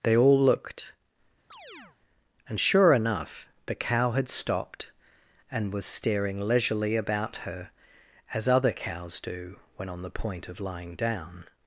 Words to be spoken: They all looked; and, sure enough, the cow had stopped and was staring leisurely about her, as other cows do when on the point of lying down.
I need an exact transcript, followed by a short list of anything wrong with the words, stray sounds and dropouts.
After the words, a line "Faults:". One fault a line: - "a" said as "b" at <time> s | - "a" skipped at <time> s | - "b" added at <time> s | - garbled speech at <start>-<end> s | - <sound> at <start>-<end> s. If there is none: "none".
They all looked; and, sure enough, the cow had stopped and was staring leisurely about her, as other cows do when on the point of lying down.
Faults:
- chirp at 1.5-2.0 s